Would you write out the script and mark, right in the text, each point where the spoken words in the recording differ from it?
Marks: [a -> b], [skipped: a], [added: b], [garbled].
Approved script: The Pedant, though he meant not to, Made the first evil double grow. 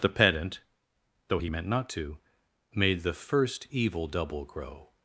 The Pedant, though he meant not to, Made the first evil double grow.